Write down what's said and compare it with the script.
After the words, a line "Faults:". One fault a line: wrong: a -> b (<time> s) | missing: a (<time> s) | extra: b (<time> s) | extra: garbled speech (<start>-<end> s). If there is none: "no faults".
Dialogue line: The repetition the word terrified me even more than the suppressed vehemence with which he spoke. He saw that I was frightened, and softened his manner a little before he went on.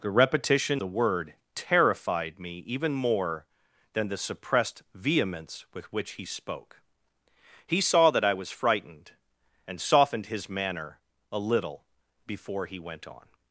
The repetition the word terrified me even more than the suppressed vehemence with which he spoke. He saw that I was frightened, and softened his manner a little before he went on.
Faults:
no faults